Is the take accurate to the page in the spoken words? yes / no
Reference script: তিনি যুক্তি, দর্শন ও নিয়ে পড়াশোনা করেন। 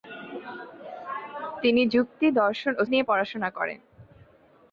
yes